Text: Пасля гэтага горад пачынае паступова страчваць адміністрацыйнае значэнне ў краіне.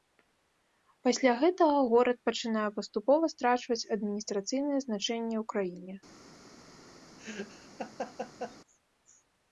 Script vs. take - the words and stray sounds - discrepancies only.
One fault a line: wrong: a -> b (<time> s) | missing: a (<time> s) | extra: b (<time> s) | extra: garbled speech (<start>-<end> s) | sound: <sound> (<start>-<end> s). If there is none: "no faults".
sound: laugh (7.2-8.6 s)